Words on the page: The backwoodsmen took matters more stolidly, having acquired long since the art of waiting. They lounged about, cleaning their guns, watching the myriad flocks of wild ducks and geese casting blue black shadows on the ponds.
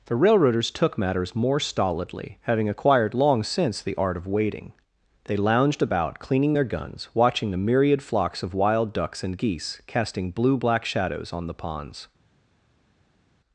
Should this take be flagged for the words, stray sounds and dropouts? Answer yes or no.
yes